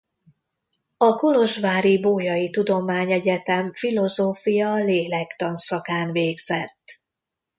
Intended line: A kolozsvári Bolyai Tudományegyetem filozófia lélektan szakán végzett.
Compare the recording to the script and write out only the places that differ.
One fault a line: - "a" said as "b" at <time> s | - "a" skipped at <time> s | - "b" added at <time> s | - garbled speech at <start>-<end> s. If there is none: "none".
none